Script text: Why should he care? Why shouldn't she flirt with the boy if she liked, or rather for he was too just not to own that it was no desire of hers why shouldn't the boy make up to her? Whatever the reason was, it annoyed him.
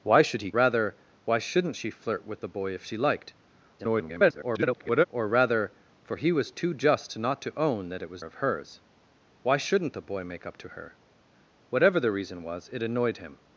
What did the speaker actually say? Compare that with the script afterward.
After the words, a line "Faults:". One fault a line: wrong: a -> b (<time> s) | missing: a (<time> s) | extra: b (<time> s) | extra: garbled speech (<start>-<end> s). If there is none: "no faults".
Why should he rather? Why shouldn't she flirt with the boy if she liked, [garbled] or rather for he was too just not to own that it was of hers why shouldn't the boy make up to her? Whatever the reason was, it annoyed him.
Faults:
wrong: care -> rather (0.5 s)
extra: garbled speech (3.8-5.0 s)
missing: no desire (8.2 s)